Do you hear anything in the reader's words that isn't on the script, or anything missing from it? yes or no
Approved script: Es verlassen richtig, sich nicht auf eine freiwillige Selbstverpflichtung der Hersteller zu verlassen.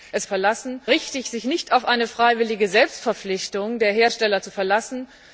no